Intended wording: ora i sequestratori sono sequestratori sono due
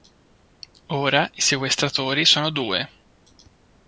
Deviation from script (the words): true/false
true